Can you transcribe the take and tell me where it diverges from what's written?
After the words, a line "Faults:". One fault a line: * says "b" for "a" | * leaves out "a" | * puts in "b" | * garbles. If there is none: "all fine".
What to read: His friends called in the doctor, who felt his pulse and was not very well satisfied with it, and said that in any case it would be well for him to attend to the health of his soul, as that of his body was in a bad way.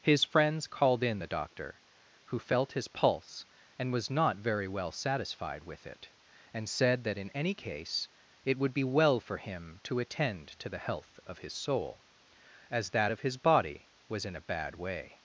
His friends called in the doctor, who felt his pulse and was not very well satisfied with it, and said that in any case it would be well for him to attend to the health of his soul, as that of his body was in a bad way.
Faults:
all fine